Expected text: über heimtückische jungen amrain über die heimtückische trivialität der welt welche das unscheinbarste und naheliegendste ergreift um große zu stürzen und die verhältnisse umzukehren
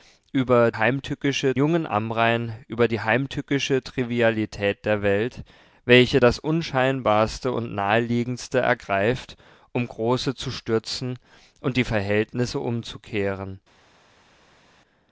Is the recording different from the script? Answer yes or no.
no